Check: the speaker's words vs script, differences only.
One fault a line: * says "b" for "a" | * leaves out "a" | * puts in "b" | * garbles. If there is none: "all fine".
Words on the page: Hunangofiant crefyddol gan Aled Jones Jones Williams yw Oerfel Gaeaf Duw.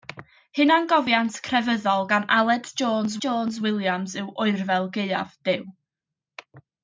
all fine